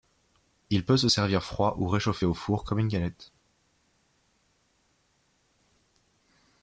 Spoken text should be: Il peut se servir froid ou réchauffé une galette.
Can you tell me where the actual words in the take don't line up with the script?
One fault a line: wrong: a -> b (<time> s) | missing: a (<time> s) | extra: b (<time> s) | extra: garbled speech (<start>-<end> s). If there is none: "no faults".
extra: au four comme (2.2 s)